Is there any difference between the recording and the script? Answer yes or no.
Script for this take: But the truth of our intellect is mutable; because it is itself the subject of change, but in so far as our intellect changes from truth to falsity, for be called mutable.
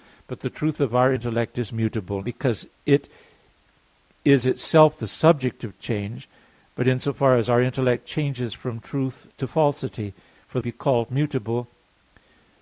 no